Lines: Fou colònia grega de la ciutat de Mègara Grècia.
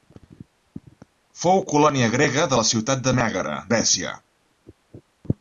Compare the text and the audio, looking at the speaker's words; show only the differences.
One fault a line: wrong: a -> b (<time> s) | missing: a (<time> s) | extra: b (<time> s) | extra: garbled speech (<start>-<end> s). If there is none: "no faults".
no faults